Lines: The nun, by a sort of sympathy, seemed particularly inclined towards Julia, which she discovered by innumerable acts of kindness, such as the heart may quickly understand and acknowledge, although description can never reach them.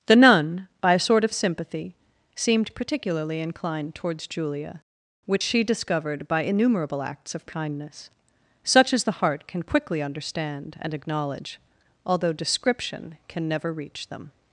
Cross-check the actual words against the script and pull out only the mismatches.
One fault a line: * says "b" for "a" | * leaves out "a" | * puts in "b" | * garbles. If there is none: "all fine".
* says "can" for "may"